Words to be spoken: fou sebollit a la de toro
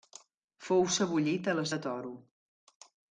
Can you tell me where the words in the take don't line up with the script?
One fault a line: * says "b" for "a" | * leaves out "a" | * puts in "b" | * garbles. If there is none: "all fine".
all fine